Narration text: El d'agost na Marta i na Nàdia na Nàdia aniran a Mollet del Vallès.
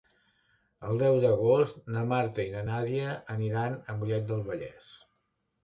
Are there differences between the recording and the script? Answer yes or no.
yes